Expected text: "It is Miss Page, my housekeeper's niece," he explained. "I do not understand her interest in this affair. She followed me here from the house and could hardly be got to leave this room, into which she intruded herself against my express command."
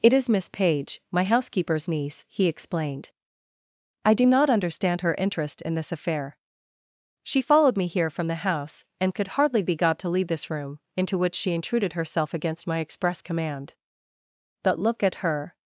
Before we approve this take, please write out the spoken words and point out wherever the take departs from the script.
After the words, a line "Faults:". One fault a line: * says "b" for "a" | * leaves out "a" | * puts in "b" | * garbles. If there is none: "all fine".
"It is Miss Page, my housekeeper's niece," he explained. "I do not understand her interest in this affair. She followed me here from the house and could hardly be got to leave this room, into which she intruded herself against my express command." "But look at her
Faults:
* puts in "But look at her"